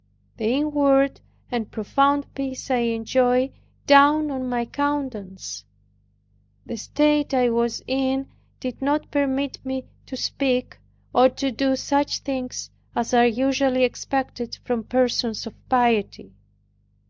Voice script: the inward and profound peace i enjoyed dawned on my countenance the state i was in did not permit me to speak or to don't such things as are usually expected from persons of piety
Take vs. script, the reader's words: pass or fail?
fail